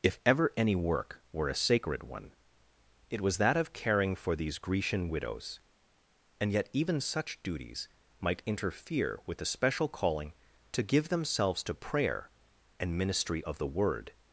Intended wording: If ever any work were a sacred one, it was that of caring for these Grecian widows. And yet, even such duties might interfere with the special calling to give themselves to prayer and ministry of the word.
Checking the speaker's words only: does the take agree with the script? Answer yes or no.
yes